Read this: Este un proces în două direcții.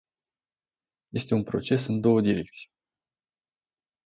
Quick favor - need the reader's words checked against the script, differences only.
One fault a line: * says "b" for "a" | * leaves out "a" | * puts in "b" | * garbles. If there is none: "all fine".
all fine